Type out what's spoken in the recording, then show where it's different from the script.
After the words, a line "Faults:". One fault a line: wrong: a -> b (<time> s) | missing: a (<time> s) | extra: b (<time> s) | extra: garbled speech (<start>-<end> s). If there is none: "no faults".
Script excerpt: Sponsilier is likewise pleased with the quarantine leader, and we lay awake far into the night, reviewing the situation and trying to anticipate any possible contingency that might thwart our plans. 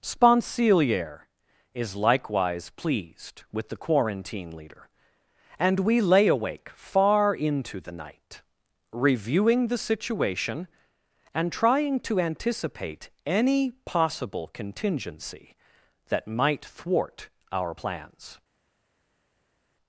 Sponsilier is likewise pleased with the quarantine leader, and we lay awake far into the night, reviewing the situation and trying to anticipate any possible contingency that might thwart our plans.
Faults:
no faults